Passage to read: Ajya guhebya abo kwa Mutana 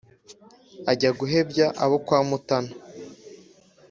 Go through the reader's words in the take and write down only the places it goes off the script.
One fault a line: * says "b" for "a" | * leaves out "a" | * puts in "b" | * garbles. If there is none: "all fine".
all fine